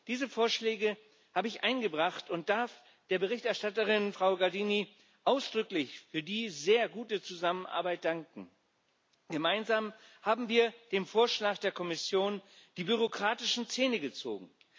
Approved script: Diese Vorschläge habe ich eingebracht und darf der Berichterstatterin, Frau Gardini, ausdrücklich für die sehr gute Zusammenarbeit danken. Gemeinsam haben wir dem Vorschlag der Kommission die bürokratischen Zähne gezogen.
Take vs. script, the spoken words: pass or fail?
pass